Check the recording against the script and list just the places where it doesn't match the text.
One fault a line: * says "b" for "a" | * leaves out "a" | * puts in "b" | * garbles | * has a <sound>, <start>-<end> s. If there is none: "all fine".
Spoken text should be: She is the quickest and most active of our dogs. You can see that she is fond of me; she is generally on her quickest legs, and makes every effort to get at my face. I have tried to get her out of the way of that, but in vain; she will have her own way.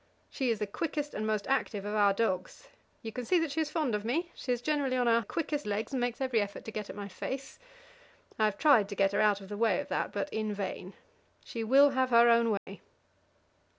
* has a dropout, 12.6-12.7 s